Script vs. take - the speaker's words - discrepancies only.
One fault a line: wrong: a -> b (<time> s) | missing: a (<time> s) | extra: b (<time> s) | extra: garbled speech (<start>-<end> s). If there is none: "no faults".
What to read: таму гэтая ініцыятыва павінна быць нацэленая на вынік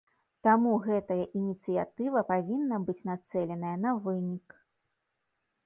no faults